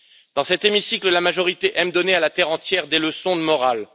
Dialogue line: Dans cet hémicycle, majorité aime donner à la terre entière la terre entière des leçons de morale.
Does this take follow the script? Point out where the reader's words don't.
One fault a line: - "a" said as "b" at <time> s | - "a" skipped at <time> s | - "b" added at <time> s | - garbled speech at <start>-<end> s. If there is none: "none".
- "la" added at 1.1 s
- "la terre entière" skipped at 2.9 s